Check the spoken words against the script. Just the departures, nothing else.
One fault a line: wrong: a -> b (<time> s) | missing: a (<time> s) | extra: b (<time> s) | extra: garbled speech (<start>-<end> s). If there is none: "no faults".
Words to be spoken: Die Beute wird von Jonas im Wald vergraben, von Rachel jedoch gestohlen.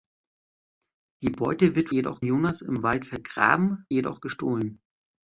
wrong: von -> jedoch (1.9 s)
missing: von Rachel (3.9 s)